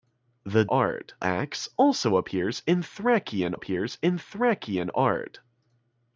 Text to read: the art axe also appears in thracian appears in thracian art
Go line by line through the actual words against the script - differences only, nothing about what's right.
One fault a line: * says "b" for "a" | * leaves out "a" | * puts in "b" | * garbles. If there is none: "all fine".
all fine